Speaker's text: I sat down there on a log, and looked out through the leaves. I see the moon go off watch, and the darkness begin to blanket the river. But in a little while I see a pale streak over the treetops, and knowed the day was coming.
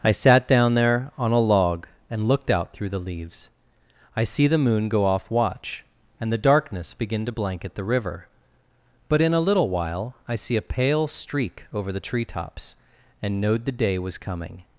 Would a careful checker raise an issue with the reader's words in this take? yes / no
no